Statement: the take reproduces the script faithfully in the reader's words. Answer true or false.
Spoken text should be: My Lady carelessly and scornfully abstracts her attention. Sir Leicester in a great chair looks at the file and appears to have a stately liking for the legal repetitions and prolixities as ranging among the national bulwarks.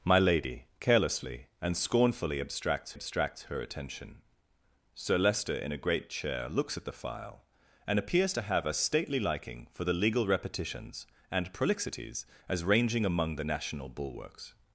false